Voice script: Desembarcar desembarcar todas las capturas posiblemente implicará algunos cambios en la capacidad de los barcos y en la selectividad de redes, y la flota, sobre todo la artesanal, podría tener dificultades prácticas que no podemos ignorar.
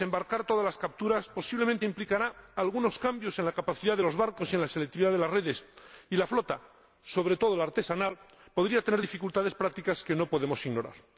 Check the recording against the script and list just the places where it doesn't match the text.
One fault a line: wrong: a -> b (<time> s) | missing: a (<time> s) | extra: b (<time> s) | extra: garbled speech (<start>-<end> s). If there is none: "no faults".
missing: desembarcar (0.5 s)
extra: las (5.2 s)